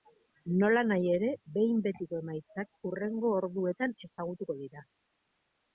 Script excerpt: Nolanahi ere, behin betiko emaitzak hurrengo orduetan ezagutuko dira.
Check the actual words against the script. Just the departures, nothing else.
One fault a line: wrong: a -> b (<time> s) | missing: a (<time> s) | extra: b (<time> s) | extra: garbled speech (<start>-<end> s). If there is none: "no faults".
no faults